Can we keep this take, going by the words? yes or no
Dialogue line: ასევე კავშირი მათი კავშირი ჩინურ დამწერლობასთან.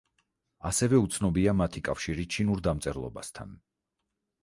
no